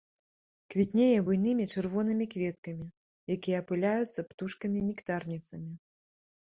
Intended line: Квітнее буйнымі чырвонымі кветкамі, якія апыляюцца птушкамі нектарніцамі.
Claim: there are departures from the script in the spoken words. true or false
false